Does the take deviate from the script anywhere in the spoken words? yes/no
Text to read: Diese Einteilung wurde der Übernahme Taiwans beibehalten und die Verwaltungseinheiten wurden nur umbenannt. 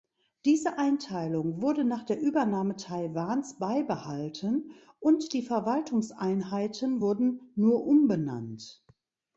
yes